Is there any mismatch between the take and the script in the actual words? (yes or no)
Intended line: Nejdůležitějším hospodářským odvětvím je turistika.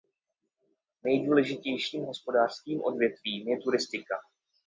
no